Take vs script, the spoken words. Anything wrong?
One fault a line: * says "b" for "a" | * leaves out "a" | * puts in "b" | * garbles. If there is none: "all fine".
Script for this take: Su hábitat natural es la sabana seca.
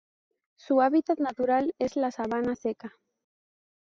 all fine